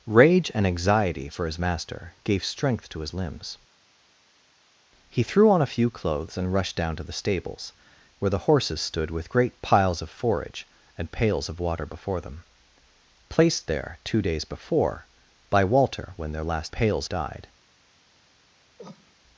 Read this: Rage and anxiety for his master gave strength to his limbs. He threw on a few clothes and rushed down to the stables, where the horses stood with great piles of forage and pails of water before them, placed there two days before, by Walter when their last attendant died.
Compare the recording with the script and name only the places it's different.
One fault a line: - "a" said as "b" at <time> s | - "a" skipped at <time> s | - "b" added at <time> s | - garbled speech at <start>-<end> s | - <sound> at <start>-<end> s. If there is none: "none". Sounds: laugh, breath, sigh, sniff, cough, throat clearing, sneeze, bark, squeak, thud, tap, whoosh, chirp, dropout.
- "attendant" said as "pails" at 16.7 s
- cough at 18.8-19.2 s